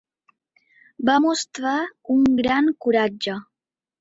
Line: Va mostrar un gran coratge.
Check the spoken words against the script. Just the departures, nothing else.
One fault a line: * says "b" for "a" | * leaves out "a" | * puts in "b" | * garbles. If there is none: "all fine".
all fine